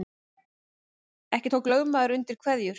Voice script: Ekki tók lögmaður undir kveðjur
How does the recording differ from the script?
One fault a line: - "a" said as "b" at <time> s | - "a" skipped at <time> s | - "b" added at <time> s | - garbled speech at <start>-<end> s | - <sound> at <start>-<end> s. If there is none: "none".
none